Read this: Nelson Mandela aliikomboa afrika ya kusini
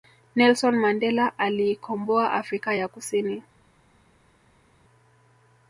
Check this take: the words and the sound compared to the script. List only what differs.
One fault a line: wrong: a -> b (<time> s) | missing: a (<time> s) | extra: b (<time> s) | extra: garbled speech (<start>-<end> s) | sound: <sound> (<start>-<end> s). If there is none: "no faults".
no faults